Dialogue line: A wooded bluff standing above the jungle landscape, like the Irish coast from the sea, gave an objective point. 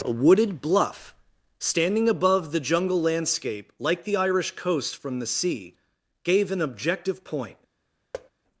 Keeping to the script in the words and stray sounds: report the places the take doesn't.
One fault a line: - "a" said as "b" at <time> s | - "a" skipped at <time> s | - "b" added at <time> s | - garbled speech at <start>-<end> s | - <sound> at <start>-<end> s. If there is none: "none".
- thud at 8.1-8.3 s